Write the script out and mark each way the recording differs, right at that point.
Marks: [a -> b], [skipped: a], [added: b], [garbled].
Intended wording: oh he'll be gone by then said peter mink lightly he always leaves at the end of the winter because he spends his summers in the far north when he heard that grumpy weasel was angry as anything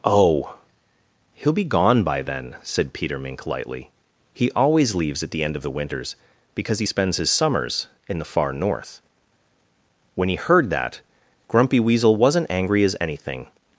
oh he'll be gone by then said peter mink lightly he always leaves at the end of the [winter -> winters] because he spends his summers in the far north when he heard that grumpy weasel [was -> wasn't] angry as anything